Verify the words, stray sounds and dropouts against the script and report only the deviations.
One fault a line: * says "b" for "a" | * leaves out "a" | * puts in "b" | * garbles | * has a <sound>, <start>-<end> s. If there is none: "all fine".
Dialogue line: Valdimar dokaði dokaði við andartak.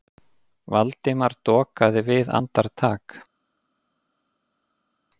* leaves out "dokaði"